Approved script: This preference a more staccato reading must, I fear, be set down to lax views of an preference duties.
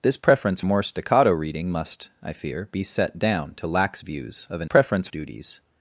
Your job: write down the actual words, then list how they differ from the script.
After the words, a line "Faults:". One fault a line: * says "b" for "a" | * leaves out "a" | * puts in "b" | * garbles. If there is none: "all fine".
This preference a more staccato reading must, I fear, be set down to lax views of an preference duties.
Faults:
all fine